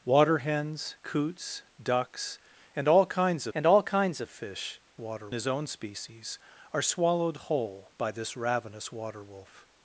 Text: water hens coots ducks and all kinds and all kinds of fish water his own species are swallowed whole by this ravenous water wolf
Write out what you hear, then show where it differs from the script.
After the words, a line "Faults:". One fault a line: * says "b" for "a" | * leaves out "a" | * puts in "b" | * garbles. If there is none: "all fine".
water hens coots ducks and all kinds and all kinds of fish water his own species are swallowed whole by this ravenous water wolf
Faults:
all fine